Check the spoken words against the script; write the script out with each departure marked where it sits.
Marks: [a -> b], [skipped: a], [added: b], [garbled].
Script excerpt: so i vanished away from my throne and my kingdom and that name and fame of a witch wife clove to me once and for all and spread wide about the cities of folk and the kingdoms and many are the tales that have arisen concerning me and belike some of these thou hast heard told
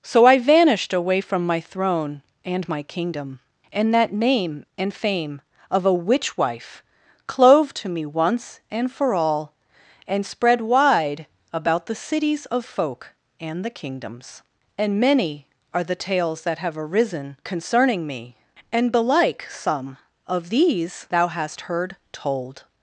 so i vanished away from my throne and my kingdom and that name and fame of a witch wife clove to me once and for all and spread wide about the cities of folk and the kingdoms and many are the tales that have arisen concerning me and belike some of these thou hast heard told